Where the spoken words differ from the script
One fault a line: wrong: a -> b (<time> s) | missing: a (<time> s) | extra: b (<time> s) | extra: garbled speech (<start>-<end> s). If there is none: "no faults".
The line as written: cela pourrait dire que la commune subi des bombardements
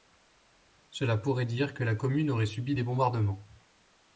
extra: aurait (2.3 s)